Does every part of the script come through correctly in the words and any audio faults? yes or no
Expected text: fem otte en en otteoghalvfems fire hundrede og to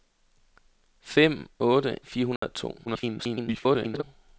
no